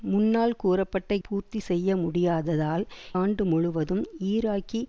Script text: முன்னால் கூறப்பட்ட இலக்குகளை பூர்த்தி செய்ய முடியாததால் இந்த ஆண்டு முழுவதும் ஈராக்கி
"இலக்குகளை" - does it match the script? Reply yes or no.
no